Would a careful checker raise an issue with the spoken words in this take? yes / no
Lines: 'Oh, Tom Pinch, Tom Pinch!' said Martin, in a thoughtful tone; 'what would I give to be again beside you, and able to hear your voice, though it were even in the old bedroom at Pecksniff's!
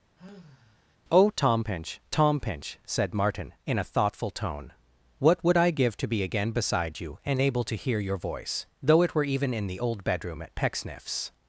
no